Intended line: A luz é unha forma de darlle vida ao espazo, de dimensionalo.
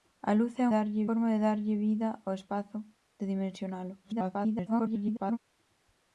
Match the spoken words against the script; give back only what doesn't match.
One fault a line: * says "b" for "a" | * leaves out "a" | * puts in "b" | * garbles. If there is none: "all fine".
* says "darlle" for "unha"
* garbles